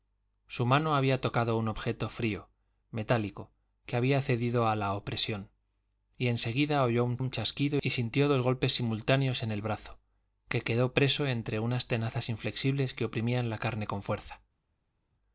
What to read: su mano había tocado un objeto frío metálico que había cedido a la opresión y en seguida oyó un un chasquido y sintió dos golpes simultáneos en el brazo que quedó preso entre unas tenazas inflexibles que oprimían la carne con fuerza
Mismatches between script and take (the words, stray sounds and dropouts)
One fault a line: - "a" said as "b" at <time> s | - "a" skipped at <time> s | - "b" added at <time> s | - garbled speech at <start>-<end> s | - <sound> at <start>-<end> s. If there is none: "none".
none